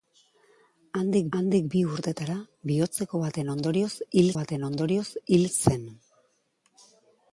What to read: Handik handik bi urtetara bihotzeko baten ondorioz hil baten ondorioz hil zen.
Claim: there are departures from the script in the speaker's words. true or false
false